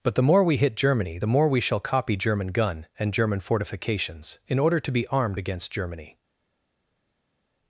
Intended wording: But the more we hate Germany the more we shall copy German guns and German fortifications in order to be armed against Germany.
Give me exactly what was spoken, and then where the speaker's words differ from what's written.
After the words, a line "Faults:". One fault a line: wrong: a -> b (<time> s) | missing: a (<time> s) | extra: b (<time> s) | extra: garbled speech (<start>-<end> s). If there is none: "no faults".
But the more we hit Germany the more we shall copy German gun and German fortifications in order to be armed against Germany.
Faults:
wrong: hate -> hit (0.6 s)
wrong: guns -> gun (2.5 s)